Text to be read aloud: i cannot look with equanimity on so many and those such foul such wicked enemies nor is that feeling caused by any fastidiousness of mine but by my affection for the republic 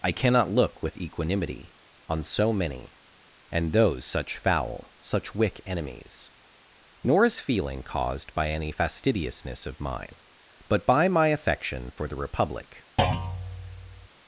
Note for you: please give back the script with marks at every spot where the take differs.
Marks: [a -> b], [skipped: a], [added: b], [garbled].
i cannot look with equanimity on so many and those such foul such [wicked -> wick] enemies nor is [skipped: that] feeling caused by any fastidiousness of mine but by my affection for the republic